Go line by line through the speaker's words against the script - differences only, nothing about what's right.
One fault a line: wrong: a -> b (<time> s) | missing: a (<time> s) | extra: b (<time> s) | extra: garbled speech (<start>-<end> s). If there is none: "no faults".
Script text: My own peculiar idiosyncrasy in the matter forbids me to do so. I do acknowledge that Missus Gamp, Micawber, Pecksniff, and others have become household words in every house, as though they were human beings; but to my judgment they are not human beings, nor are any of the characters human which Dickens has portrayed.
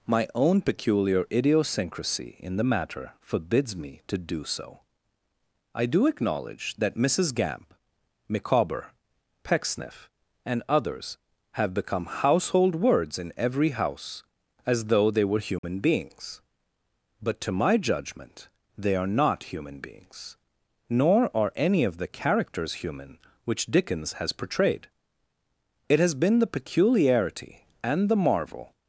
extra: It has been the peculiarity and the marvel (25.9 s)